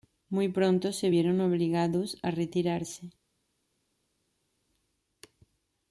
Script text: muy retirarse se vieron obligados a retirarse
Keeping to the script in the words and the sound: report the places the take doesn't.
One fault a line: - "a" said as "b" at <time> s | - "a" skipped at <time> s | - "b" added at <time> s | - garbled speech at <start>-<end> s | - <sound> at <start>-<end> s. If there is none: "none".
- "retirarse" said as "pronto" at 0.5 s